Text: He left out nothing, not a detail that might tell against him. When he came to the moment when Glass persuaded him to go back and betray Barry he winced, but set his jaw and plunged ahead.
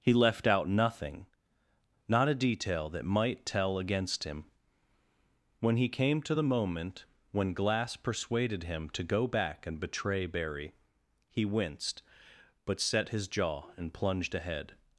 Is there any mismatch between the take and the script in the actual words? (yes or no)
no